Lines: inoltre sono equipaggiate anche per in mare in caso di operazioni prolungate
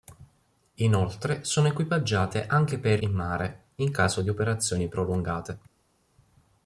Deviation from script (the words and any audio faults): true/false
false